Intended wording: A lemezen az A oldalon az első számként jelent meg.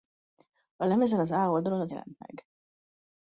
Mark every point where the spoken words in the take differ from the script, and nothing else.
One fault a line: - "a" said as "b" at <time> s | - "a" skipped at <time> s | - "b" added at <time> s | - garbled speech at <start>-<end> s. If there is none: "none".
- "első számként" skipped at 1.9 s